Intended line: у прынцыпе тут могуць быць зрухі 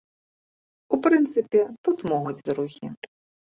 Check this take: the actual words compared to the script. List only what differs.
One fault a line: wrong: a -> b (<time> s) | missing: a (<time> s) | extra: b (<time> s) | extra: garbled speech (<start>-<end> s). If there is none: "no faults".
missing: быць (2.4 s)